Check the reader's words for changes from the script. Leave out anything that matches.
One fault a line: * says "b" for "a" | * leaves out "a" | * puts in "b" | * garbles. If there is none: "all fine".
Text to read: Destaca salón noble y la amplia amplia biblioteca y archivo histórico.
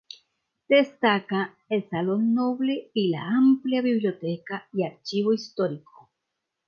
* puts in "el"
* leaves out "amplia"